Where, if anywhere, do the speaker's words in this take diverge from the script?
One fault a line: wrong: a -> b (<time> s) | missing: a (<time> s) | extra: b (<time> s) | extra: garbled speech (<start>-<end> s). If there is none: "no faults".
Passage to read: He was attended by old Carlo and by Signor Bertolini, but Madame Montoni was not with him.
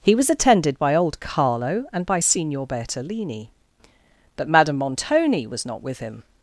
no faults